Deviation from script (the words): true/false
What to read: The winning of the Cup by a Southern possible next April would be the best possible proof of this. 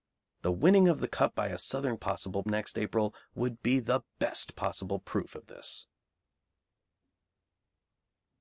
false